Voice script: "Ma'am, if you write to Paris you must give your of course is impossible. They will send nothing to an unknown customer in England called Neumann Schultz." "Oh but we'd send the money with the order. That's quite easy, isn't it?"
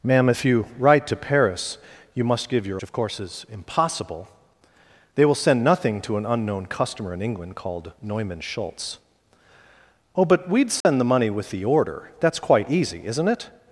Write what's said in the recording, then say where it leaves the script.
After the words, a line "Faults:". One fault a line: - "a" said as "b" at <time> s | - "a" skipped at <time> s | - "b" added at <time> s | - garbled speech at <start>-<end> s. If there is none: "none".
"Ma'am, if you write to Paris you must give your of course is impossible. They will send nothing to an unknown customer in England called Neumann Schultz." "Oh but we'd send the money with the order. That's quite easy, isn't it?"
Faults:
none